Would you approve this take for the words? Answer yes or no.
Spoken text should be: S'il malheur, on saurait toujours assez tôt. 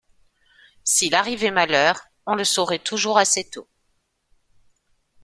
no